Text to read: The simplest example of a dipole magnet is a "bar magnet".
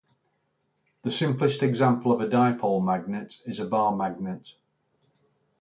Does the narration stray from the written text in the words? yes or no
no